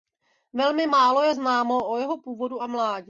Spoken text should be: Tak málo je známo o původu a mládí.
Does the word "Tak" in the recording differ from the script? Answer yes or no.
yes